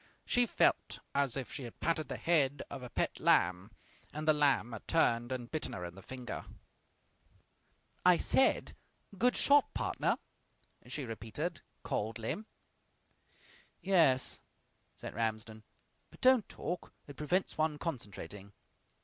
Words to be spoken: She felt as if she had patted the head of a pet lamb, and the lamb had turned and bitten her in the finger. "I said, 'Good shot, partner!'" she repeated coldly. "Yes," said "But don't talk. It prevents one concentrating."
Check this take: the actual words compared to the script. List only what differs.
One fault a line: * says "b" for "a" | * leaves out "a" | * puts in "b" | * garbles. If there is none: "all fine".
* puts in "Ramsden"